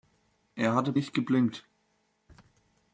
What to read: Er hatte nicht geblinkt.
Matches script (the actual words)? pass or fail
pass